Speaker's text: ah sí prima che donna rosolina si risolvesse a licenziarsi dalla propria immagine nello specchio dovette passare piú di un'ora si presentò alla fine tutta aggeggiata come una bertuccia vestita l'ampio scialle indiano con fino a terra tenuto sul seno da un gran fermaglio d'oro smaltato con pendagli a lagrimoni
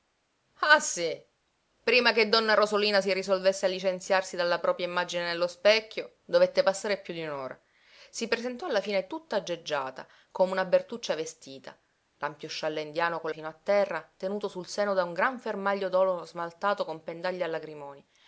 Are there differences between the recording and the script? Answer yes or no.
no